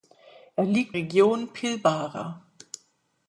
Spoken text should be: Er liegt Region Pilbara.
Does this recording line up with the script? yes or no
yes